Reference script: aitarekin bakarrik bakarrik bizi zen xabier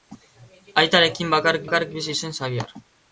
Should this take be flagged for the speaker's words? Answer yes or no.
no